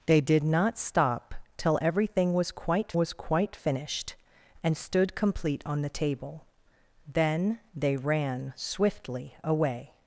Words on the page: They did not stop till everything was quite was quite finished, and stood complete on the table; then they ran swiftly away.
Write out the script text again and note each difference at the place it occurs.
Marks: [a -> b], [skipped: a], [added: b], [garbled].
They did not stop till everything was quite was quite finished, and stood complete on the table; then they ran swiftly away.